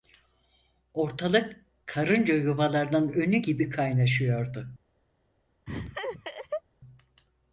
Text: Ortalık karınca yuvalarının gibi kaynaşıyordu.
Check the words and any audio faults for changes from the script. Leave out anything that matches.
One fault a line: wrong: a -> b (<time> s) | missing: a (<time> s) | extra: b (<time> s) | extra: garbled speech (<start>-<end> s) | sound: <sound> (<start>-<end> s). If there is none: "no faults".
extra: önü (3.1 s)
sound: laugh (5.7-6.6 s)